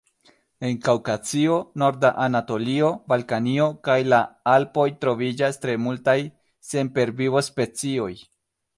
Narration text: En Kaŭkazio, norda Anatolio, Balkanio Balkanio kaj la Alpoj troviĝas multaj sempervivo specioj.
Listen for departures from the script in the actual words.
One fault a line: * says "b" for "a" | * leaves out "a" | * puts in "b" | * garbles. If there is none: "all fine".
* leaves out "Balkanio"
* puts in "tre"